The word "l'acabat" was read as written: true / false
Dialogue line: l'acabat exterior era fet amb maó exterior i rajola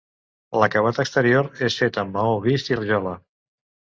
true